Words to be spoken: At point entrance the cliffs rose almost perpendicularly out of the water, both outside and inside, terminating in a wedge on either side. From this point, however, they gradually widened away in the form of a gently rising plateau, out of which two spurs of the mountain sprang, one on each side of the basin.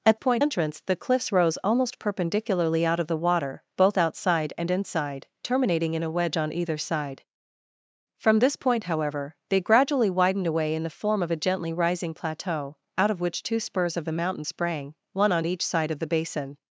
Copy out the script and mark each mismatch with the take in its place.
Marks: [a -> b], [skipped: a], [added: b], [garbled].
At point entrance the cliffs rose almost perpendicularly out of the water, both outside and inside, terminating in a wedge on either side. From this point, however, they gradually widened away in the form of a gently rising plateau, out of which two spurs of the mountain sprang, one on each side of the basin.